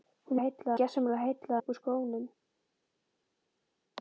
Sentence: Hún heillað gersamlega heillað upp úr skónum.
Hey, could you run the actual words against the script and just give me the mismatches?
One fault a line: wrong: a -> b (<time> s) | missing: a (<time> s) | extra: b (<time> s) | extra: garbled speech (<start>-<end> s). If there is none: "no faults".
no faults